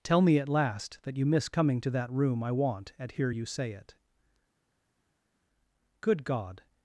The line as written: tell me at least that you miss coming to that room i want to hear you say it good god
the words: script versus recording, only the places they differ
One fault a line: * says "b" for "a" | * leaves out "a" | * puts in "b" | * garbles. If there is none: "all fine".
* says "last" for "least"
* says "at" for "to"